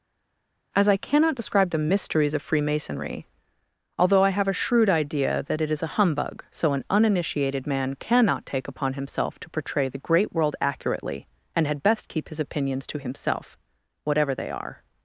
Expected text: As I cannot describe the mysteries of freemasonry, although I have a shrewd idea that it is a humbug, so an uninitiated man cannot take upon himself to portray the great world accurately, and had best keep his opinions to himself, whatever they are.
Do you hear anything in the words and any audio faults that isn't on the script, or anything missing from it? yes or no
no